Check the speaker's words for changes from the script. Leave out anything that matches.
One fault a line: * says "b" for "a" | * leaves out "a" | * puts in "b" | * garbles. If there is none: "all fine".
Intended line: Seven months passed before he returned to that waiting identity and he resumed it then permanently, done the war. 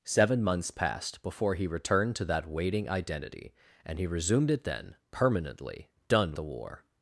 all fine